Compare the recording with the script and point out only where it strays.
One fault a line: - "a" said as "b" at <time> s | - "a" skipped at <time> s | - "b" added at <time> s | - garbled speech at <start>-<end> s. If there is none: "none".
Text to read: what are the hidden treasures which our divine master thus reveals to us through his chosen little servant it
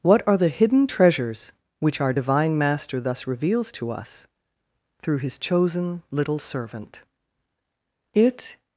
none